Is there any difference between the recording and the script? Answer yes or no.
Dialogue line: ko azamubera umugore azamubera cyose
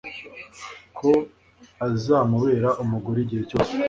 yes